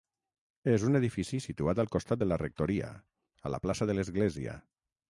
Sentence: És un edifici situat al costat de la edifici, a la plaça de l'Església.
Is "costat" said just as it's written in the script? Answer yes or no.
yes